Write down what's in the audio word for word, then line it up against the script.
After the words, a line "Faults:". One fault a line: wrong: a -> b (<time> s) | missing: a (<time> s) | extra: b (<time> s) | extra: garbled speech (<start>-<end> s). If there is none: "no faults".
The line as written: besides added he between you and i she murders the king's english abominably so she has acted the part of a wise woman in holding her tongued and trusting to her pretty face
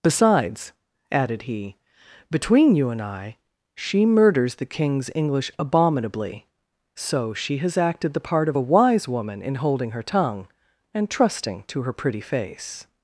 besides added he between you and i she murders the king's english abominably so she has acted the part of a wise woman in holding her tongue and trusting to her pretty face
Faults:
wrong: tongued -> tongue (10.0 s)